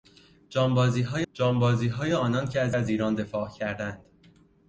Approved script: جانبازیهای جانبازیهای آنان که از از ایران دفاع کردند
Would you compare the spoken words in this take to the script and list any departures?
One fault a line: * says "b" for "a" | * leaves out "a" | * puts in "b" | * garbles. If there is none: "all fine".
all fine